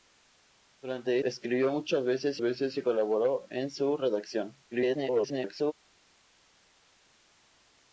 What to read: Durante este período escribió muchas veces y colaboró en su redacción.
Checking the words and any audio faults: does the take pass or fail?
fail